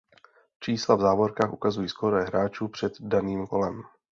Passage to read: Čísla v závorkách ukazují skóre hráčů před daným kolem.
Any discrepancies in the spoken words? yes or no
no